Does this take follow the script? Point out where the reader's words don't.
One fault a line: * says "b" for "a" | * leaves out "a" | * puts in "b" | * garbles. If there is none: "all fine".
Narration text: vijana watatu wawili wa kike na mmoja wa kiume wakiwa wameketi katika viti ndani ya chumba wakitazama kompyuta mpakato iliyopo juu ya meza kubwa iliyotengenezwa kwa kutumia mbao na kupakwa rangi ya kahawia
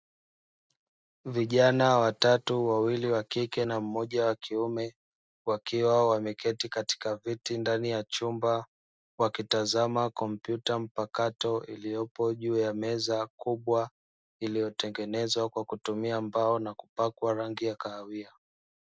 all fine